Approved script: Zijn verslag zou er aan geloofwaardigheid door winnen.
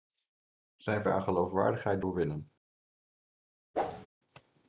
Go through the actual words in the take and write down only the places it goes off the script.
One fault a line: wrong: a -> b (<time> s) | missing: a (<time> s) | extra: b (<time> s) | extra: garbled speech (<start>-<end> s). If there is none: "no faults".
missing: verslag zou (1.0 s)